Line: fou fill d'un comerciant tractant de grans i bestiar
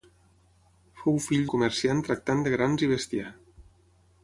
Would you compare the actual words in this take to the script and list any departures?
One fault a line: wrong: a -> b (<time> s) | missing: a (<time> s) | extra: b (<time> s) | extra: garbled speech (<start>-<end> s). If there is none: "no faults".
missing: d'un (1.4 s)